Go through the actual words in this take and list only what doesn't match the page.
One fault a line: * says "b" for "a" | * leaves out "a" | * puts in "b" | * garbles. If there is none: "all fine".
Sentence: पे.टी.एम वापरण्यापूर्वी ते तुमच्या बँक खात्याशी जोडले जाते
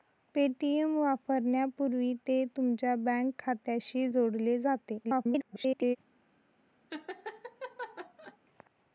* garbles